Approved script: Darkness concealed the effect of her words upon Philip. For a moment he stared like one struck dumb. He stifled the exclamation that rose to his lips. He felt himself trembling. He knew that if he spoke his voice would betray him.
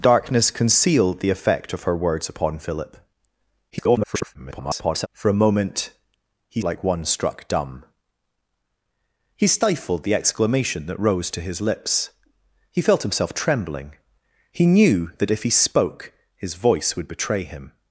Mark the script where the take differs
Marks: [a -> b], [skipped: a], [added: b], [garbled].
Darkness concealed the effect of her words upon Philip. [garbled] For a moment he [skipped: stared] like one struck dumb. He stifled the exclamation that rose to his lips. He felt himself trembling. He knew that if he spoke his voice would betray him.